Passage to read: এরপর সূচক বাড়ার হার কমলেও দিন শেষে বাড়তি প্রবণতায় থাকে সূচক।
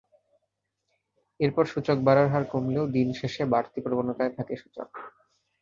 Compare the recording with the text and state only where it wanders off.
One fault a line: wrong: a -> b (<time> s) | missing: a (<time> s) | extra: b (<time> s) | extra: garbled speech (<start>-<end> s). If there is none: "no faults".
no faults